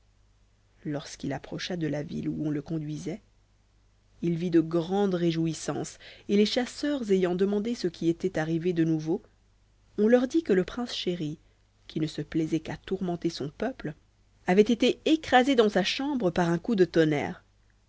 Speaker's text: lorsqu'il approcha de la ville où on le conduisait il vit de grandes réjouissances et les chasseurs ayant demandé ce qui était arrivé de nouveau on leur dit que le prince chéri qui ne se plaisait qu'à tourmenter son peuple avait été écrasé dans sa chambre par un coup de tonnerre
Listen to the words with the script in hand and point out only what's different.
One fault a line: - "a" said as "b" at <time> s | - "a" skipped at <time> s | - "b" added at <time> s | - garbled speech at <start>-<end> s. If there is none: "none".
none